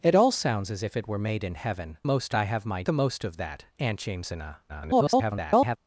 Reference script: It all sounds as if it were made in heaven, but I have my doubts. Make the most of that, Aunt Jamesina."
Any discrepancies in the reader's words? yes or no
yes